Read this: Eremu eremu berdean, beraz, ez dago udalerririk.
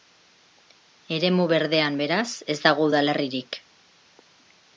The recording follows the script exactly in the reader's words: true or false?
false